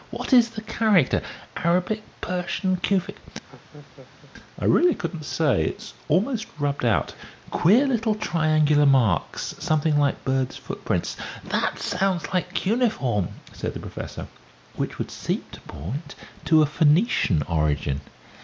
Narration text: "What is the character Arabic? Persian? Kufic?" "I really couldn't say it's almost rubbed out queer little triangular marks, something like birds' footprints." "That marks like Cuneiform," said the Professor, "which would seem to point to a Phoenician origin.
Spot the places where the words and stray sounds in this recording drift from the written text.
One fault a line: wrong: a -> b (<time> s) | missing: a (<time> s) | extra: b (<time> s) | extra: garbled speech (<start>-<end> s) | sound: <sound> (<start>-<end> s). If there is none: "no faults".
sound: laugh (3.5-4.3 s)
wrong: marks -> sounds (11.8 s)